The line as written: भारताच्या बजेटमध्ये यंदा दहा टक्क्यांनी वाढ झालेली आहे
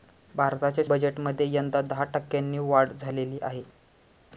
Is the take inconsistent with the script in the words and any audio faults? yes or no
no